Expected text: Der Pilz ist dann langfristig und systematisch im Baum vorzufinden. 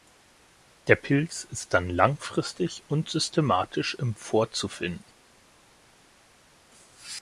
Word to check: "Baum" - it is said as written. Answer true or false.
false